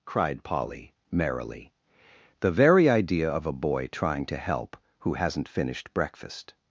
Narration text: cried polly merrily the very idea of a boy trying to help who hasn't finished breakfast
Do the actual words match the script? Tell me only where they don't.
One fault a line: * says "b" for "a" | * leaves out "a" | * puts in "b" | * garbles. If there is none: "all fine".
all fine